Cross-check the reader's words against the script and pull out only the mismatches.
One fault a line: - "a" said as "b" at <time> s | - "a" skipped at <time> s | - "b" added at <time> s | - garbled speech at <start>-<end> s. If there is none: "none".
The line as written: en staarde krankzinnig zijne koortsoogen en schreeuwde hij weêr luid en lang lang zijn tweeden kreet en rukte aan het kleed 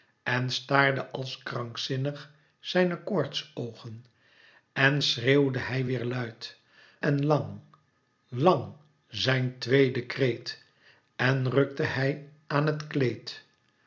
- "als" added at 1.1 s
- "hij" added at 11.8 s